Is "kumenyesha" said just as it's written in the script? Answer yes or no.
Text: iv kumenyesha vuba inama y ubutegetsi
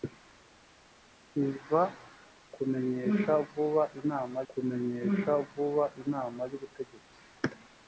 yes